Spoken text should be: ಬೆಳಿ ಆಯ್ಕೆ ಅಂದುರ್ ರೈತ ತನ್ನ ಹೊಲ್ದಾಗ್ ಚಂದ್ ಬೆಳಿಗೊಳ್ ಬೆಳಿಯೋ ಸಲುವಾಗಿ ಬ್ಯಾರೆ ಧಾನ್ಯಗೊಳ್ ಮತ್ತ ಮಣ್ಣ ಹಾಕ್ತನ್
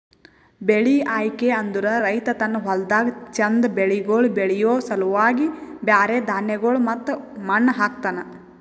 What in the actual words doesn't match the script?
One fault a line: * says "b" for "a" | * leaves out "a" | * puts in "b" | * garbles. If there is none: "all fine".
all fine